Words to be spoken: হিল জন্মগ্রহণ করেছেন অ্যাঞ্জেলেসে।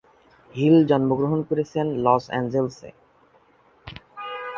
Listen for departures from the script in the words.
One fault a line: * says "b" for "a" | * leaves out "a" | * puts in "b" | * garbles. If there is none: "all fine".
* puts in "লস"